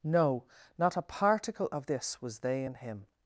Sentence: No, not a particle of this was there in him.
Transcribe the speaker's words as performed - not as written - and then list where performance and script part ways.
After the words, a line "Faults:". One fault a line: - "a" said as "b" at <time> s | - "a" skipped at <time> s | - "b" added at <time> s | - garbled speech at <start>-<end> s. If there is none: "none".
No, not a particle of this was they in him.
Faults:
- "there" said as "they" at 2.4 s